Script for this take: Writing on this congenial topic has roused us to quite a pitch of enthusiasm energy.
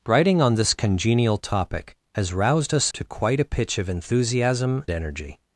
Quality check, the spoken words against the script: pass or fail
pass